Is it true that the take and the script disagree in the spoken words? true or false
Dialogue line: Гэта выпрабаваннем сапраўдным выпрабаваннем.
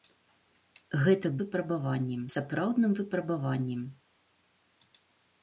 false